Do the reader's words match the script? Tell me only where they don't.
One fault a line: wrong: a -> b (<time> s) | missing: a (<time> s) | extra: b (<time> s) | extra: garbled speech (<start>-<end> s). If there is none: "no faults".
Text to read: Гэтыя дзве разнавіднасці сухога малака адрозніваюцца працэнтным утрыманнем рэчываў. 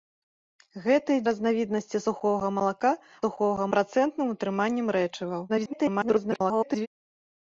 missing: дзве (1.2 s)
wrong: адрозніваюцца -> сухога (3.2 s)
extra: garbled speech (5.5-6.9 s)